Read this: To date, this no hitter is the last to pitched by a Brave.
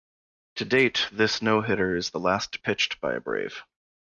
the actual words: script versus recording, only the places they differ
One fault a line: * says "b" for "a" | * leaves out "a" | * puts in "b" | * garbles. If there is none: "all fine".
all fine